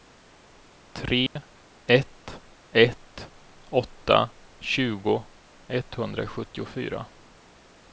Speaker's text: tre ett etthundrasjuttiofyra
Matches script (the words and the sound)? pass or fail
fail